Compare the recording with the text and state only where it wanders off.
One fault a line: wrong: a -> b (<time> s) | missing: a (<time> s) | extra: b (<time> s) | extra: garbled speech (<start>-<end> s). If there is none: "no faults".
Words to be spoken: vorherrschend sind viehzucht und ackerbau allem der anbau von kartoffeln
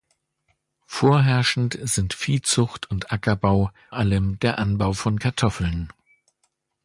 no faults